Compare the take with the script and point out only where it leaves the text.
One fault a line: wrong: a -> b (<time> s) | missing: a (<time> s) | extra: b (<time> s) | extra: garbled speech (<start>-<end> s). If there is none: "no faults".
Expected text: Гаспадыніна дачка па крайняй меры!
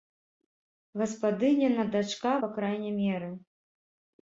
no faults